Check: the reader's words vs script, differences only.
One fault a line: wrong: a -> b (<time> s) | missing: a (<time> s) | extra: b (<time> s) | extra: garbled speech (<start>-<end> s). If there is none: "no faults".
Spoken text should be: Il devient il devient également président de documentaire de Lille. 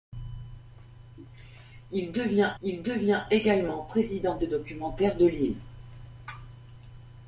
no faults